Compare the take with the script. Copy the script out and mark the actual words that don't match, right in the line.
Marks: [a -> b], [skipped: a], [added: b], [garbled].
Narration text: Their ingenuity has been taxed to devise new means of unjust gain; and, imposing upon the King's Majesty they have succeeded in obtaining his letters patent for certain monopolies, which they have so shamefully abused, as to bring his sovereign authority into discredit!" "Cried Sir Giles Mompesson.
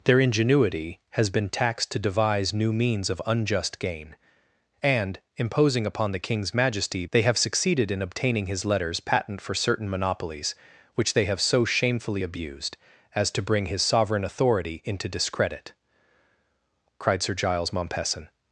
Their ingenuity has been taxed to devise new means of unjust gain; and, imposing upon the King's Majesty they have succeeded in obtaining his letters patent for certain monopolies, which they have so shamefully abused, as to bring his sovereign authority into discredit!" "Cried Sir Giles Mompesson.